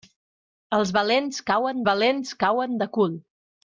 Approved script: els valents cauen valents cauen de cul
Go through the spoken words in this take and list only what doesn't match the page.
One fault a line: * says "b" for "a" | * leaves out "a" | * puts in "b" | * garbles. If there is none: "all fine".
all fine